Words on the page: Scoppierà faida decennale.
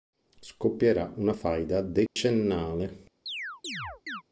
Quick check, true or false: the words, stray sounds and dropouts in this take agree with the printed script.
false